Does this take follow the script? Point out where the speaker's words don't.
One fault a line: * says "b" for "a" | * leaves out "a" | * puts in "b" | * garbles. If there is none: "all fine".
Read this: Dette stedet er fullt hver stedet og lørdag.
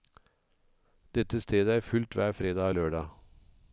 * says "fredag" for "stedet"